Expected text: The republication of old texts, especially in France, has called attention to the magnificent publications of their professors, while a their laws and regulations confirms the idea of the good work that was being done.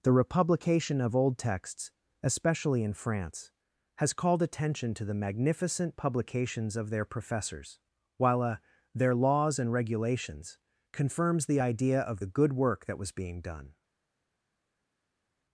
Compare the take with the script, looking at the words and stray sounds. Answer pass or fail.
pass